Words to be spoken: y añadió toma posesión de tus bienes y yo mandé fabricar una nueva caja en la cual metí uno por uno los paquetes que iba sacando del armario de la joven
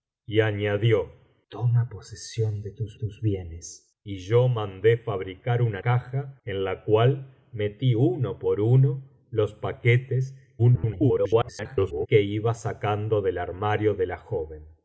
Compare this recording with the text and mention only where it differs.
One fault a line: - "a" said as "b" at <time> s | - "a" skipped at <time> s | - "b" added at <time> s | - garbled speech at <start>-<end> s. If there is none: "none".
- "tus" added at 2.9 s
- "nueva" skipped at 5.8 s
- garbled speech at 10.6-12.1 s